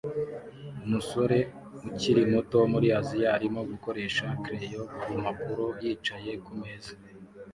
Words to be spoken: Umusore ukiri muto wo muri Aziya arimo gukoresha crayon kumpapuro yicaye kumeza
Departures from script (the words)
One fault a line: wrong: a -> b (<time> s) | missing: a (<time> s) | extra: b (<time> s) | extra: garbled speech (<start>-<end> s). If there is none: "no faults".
no faults